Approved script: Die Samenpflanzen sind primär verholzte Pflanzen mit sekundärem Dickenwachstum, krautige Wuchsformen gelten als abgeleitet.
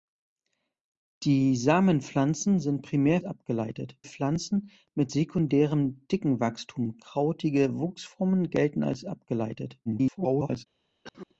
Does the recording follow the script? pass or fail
fail